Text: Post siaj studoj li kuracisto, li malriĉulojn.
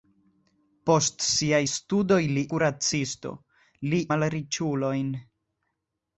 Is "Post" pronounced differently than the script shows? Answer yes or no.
no